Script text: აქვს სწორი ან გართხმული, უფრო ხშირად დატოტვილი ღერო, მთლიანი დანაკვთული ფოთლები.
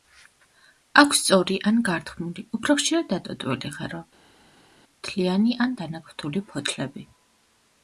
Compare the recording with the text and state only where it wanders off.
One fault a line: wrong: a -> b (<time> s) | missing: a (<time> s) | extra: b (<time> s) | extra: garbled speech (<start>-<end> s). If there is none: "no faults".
extra: ან (5.7 s)